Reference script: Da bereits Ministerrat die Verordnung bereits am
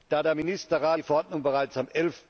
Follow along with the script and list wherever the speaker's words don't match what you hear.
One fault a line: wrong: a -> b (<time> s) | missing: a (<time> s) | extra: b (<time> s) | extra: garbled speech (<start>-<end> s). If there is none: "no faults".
wrong: bereits -> der (0.2 s)